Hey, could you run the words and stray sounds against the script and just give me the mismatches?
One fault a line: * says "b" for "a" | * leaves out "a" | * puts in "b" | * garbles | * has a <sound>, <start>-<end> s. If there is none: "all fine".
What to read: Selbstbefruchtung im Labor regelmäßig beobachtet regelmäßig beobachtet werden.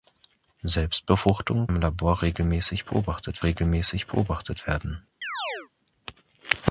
* has a chirp, 5.2-5.7 s